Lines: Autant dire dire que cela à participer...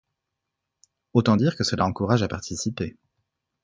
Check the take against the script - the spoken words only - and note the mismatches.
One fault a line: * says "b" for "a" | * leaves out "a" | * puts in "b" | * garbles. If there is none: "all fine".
* leaves out "dire"
* puts in "encourage"